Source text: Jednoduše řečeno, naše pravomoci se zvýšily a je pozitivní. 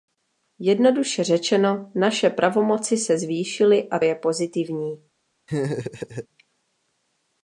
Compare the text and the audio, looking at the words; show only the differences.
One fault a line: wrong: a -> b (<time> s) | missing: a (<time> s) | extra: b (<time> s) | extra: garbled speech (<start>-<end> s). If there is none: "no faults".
no faults